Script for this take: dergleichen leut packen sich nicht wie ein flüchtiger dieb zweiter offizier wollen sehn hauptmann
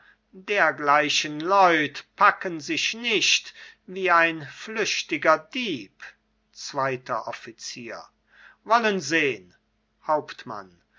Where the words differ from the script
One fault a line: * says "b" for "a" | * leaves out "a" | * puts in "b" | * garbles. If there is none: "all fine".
all fine